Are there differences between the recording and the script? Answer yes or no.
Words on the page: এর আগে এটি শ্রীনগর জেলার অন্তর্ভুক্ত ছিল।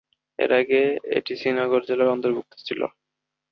no